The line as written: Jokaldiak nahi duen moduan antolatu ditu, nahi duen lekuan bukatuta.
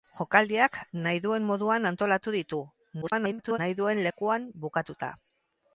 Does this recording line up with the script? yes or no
no